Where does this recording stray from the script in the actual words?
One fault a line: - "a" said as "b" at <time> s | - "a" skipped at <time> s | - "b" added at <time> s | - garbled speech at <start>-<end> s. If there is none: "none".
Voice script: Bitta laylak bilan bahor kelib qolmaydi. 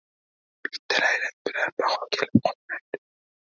none